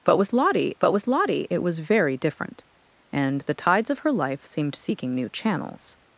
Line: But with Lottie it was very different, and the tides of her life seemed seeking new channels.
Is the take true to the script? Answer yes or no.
no